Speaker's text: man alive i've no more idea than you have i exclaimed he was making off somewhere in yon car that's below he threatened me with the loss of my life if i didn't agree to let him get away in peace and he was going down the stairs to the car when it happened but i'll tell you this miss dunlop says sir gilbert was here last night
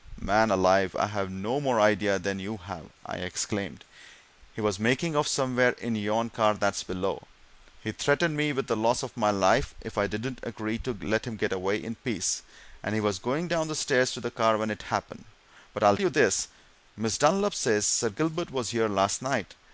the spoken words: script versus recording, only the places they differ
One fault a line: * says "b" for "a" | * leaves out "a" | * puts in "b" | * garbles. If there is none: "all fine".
* leaves out "tell"